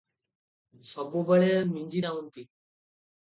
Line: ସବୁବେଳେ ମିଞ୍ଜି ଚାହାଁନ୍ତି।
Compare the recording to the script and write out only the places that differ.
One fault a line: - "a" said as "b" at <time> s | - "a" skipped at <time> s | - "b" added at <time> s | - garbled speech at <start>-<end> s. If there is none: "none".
none